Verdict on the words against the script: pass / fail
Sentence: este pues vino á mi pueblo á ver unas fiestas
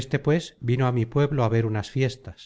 pass